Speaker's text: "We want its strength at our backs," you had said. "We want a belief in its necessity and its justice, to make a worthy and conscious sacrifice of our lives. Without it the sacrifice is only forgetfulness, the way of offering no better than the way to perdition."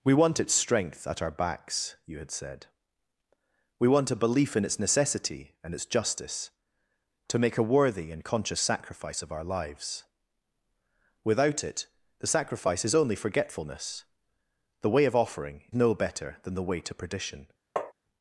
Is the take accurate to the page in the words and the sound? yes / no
no